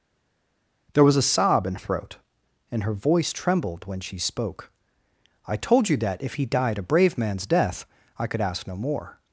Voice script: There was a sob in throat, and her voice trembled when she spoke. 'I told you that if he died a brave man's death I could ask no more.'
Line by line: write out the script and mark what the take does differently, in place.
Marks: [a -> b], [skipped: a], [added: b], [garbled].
There was a sob in throat, and her voice trembled when she spoke. 'I told you that if he died a brave man's death I could ask no more.'